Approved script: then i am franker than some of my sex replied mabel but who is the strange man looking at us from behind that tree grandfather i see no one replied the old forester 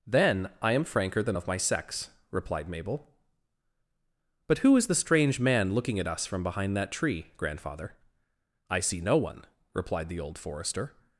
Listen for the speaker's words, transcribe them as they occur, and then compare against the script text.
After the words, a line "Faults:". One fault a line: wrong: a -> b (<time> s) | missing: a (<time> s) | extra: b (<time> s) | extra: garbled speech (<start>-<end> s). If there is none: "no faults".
then i am franker than of my sex replied mabel but who is the strange man looking at us from behind that tree grandfather i see no one replied the old forester
Faults:
missing: some (1.4 s)